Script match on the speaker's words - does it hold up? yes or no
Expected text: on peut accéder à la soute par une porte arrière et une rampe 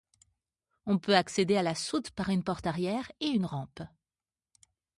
yes